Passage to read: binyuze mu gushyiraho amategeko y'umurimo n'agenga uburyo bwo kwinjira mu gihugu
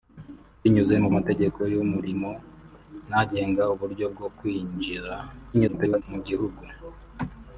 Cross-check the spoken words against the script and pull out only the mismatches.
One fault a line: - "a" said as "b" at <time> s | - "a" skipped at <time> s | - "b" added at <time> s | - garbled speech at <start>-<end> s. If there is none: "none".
- "gushyiraho" skipped at 1.1 s
- garbled speech at 5.5-6.0 s